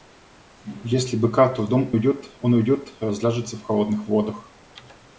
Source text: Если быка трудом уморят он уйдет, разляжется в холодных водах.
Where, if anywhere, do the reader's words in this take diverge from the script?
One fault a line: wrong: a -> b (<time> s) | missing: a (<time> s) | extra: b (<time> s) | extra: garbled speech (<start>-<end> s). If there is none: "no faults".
wrong: уморят -> уйдет (1.9 s)